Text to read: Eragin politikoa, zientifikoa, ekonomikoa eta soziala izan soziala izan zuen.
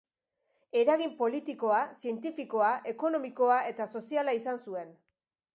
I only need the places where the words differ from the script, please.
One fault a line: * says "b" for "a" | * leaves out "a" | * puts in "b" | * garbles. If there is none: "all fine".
* leaves out "soziala izan"